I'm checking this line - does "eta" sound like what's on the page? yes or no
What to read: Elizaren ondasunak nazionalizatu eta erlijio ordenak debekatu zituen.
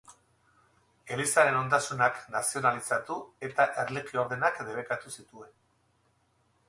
yes